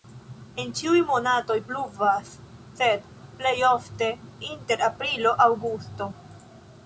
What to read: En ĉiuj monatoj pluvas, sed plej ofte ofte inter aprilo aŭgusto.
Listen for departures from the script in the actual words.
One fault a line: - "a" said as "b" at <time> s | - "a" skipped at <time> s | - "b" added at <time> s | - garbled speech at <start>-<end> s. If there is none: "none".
- "ofte" skipped at 4.1 s